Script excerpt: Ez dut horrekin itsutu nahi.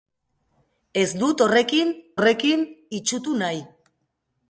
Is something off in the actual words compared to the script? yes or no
yes